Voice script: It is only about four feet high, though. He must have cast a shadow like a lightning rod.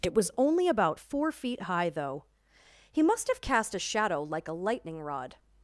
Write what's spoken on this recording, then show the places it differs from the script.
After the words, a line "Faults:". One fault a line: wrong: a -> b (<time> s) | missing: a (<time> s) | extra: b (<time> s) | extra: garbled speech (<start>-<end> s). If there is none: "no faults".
It was only about four feet high, though. He must have cast a shadow like a lightning rod.
Faults:
wrong: is -> was (0.1 s)